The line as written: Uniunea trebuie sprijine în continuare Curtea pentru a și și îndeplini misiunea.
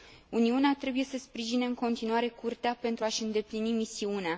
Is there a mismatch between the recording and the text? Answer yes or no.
yes